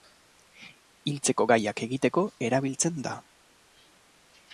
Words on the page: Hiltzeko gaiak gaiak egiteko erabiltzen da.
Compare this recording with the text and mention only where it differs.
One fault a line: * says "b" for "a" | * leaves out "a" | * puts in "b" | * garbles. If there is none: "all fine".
* leaves out "gaiak"